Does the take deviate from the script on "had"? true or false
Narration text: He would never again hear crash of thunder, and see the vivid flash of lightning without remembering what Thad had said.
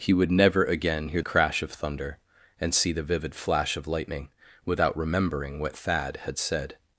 false